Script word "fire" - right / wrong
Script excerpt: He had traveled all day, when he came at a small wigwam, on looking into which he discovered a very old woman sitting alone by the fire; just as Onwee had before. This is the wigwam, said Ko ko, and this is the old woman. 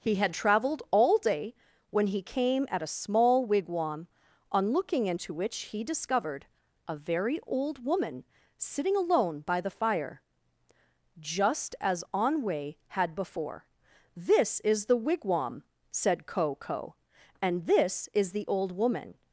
right